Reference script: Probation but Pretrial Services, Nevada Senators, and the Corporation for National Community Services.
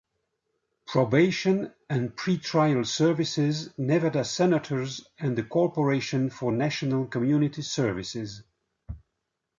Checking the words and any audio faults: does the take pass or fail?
fail